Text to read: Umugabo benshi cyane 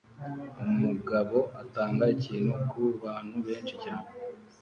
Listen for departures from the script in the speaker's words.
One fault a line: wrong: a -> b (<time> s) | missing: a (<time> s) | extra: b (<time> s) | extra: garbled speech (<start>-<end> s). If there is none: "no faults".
extra: atanga ikintu kubantu (1.6 s)